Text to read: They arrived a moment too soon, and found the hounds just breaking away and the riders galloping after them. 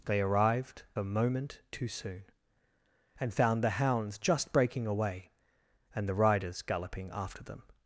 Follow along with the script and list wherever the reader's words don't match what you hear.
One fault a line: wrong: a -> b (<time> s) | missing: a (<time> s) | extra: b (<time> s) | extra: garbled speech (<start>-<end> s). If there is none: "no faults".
no faults